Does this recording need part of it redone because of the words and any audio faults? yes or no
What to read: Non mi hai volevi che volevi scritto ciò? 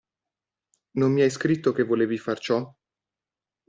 yes